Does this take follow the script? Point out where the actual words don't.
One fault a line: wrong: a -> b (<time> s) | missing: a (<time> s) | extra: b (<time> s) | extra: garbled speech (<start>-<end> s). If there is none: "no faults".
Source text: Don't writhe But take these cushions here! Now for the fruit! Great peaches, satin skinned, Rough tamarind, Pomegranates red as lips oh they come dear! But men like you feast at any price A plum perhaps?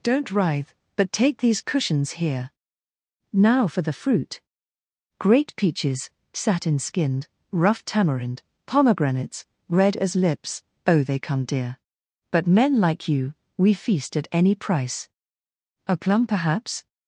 extra: we (13.6 s)